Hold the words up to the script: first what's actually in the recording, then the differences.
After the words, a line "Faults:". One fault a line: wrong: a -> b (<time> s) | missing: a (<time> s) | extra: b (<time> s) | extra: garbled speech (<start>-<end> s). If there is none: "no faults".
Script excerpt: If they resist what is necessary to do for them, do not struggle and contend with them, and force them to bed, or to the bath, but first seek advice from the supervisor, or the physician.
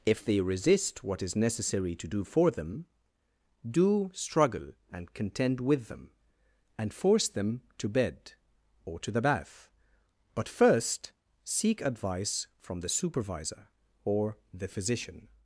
If they resist what is necessary to do for them, do struggle and contend with them, and force them to bed, or to the bath, but first seek advice from the supervisor, or the physician.
Faults:
missing: not (4.1 s)